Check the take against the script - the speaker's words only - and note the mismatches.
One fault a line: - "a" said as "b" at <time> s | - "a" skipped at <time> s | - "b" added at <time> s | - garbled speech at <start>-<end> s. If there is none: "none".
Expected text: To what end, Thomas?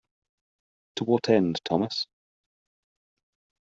none